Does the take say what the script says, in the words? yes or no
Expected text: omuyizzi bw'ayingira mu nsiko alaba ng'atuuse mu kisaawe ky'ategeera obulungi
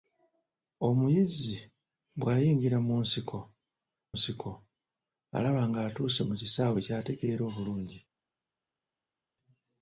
no